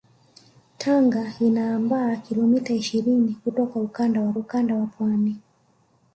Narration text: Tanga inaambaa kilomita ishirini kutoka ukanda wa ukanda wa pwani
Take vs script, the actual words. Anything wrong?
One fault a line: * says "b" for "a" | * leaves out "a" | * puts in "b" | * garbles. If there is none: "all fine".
all fine